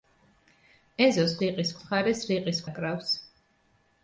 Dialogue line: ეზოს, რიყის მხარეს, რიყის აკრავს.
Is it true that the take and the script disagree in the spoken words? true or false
false